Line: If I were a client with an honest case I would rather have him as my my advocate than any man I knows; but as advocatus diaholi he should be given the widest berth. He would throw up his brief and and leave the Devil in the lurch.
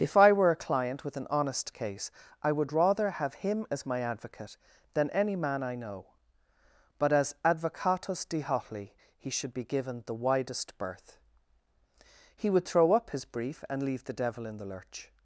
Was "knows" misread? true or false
true